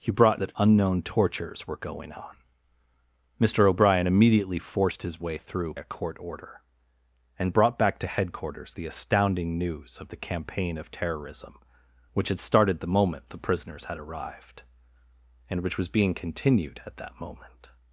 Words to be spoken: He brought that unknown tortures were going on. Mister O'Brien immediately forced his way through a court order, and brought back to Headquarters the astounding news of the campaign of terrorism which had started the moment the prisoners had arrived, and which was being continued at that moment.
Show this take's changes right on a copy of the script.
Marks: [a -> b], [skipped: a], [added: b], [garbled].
He brought that unknown tortures were going on. Mister O'Brien immediately forced his way through a court order, and brought back to Headquarters the astounding news of the campaign of terrorism which had started the moment the prisoners had arrived, and which was being continued at that moment.